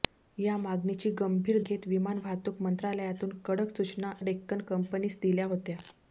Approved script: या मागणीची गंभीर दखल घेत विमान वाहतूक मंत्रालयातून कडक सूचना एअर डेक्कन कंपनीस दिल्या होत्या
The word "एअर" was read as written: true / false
false